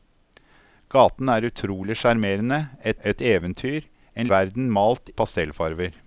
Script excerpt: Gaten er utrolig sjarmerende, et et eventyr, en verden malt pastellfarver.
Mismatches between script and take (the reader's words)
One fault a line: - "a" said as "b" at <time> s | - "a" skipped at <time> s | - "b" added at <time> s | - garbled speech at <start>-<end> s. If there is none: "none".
none